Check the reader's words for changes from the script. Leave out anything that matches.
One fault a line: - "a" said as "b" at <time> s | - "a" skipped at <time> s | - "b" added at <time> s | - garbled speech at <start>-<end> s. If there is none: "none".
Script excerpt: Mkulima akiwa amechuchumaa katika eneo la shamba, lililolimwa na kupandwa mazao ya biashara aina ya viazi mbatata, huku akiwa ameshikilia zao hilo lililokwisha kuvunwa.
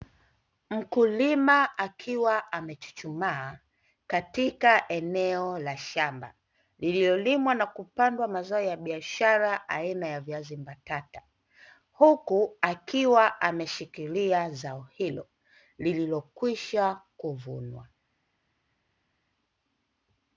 none